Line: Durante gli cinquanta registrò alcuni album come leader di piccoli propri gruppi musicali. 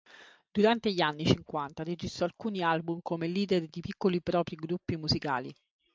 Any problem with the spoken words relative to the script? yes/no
yes